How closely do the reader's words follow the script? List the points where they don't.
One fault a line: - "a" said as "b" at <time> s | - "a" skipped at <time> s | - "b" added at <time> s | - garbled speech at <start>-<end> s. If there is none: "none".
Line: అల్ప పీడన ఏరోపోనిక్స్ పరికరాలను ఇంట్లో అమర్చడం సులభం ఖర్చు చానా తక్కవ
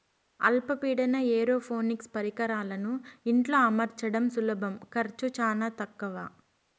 none